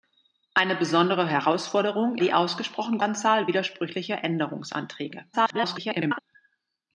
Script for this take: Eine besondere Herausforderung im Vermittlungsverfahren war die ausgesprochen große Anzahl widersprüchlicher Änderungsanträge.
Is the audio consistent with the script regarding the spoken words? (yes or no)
no